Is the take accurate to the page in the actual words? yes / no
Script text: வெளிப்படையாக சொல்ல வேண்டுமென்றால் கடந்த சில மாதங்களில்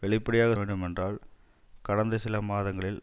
no